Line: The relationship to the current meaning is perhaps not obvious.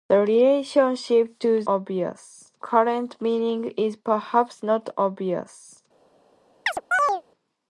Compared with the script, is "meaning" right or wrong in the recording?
right